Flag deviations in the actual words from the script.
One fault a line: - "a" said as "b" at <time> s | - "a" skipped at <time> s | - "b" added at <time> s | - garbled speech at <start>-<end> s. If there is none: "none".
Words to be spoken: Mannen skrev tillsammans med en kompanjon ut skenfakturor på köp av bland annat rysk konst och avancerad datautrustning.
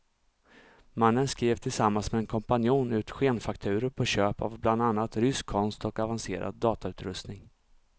none